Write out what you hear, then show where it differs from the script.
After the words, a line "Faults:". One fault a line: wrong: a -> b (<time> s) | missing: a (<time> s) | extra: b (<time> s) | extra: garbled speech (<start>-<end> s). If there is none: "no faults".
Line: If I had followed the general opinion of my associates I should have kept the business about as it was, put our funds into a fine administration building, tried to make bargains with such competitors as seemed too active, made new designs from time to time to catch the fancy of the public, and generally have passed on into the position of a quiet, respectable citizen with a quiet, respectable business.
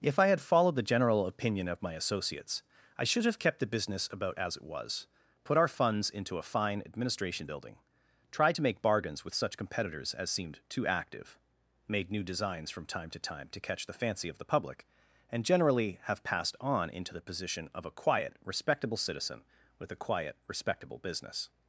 If I had followed the general opinion of my associates I should have kept the business about as it was, put our funds into a fine administration building, tried to make bargains with such competitors as seemed too active, made new designs from time to time to catch the fancy of the public, and generally have passed on into the position of a quiet, respectable citizen with a quiet, respectable business.
Faults:
no faults